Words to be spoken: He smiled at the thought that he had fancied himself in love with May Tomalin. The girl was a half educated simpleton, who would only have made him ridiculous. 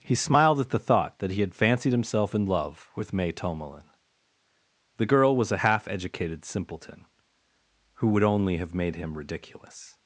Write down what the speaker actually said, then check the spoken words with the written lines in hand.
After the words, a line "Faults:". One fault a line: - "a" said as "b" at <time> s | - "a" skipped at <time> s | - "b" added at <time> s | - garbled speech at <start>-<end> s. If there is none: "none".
He smiled at the thought that he had fancied himself in love with May Tomalin. The girl was a half educated simpleton, who would only have made him ridiculous.
Faults:
none